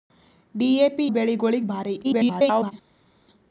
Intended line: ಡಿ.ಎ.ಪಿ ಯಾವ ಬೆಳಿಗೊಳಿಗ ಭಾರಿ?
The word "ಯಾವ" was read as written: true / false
false